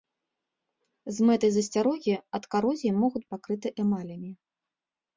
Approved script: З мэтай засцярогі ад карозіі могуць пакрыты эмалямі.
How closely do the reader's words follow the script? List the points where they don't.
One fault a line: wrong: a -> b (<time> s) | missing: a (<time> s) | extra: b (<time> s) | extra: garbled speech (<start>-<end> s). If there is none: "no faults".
no faults